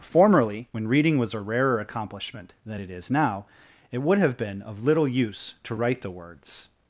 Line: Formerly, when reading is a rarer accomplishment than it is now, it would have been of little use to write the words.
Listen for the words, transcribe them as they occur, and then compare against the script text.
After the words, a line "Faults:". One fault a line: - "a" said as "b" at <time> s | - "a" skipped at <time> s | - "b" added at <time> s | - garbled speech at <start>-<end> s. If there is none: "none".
Formerly, when reading was a rarer accomplishment than it is now, it would have been of little use to write the words.
Faults:
- "is" said as "was" at 1.2 s